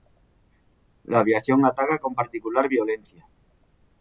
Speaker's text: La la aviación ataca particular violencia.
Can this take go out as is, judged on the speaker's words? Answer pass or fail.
fail